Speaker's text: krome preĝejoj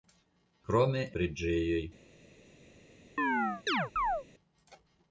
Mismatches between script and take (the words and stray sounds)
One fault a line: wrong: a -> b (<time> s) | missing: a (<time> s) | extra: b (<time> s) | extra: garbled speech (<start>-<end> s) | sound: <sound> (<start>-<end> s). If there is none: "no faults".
sound: chirp (3.2-4.2 s)